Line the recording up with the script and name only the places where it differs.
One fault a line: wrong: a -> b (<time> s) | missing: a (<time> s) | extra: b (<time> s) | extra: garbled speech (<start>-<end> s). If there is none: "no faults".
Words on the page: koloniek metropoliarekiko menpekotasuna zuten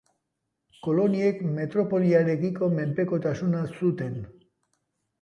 no faults